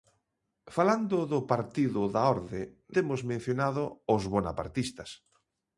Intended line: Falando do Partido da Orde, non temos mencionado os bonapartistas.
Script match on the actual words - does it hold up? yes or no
no